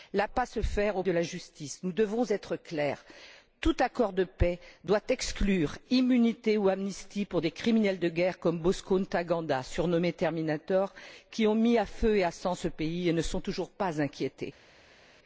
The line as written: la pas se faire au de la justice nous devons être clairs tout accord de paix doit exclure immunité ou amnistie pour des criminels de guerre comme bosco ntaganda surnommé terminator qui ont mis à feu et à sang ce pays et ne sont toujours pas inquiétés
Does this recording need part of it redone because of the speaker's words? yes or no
no